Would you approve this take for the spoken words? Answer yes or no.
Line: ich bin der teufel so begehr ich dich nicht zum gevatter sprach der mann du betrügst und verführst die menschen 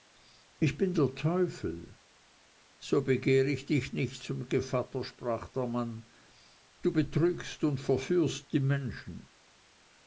yes